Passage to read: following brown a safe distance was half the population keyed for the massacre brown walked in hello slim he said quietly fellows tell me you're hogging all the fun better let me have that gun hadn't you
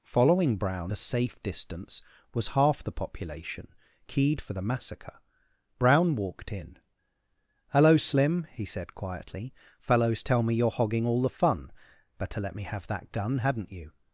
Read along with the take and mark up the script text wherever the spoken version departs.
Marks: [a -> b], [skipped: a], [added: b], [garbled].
following brown a safe distance was half the population keyed for the massacre brown walked in hello slim he said quietly fellows tell me you're hogging all the fun better let me have that gun hadn't you